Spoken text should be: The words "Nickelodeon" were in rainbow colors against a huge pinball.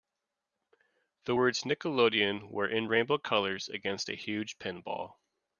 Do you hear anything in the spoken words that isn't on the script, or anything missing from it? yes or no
no